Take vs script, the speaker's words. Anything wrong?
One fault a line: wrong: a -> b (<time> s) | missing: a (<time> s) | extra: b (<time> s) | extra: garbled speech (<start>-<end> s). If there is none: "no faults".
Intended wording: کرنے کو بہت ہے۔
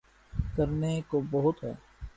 no faults